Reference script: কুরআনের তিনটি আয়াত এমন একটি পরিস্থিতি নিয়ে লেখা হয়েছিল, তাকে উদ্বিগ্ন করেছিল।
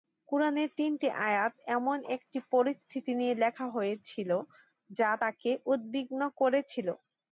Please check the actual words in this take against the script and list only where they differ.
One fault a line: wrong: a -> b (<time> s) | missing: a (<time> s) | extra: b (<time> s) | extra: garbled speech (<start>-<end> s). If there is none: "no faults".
extra: যা (5.0 s)